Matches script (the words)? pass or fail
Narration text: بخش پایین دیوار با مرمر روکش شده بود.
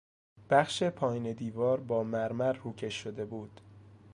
pass